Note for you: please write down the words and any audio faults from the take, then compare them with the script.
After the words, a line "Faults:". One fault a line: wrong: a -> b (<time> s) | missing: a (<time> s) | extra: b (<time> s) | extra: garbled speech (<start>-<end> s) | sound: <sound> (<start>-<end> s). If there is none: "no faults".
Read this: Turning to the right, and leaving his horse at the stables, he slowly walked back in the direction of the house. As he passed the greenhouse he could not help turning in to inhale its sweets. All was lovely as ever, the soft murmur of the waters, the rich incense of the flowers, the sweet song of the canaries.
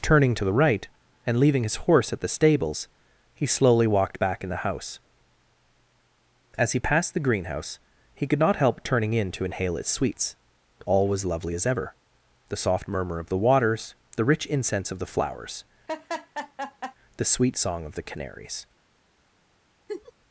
Turning to the right, and leaving his horse at the stables, he slowly walked back in the house. As he passed the greenhouse he could not help turning in to inhale its sweets. All was lovely as ever, the soft murmur of the waters, the rich incense of the flowers, the sweet song of the canaries.
Faults:
missing: direction of the (4.7 s)
sound: laugh (15.9-17.0 s)
sound: laugh (19.9-20.1 s)